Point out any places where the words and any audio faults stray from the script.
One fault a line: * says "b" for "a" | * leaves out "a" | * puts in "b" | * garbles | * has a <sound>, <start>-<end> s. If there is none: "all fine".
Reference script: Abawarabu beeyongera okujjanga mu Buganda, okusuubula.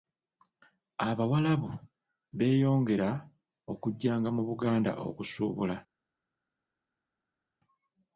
all fine